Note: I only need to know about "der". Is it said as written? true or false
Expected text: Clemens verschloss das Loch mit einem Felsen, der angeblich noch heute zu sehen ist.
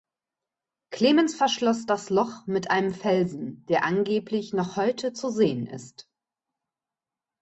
true